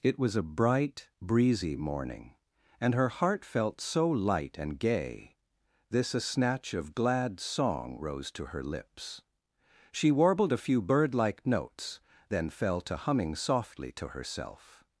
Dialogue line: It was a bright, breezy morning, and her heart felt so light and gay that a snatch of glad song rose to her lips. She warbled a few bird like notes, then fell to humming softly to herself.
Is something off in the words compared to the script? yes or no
yes